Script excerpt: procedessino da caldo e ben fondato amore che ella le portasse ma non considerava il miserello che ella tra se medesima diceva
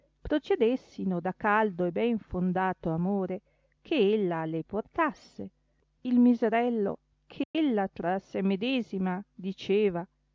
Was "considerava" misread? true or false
true